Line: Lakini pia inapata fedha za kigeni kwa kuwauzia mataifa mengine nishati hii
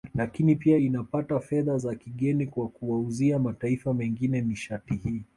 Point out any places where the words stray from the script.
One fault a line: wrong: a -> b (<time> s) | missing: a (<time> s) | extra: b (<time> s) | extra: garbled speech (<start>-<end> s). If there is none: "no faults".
no faults